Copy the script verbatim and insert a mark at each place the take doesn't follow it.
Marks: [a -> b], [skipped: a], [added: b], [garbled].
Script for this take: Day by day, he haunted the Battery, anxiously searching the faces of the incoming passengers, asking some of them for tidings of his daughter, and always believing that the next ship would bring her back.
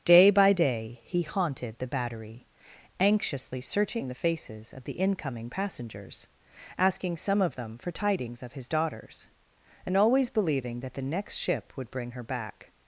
Day by day, he haunted the Battery, anxiously searching the faces of the incoming passengers, asking some of them for tidings of his [daughter, -> daughters] and always believing that the next ship would bring her back.